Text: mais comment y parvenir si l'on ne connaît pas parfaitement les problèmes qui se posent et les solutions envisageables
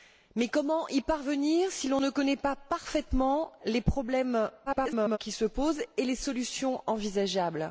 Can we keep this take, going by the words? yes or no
no